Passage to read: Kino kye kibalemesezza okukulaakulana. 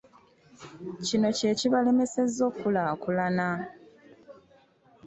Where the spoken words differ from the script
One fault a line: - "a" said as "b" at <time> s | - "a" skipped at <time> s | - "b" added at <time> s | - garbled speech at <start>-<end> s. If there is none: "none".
none